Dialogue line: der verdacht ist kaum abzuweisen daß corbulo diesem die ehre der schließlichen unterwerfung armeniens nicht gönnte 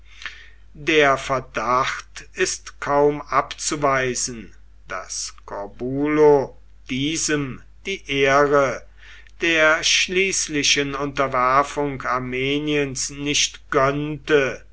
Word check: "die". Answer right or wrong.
right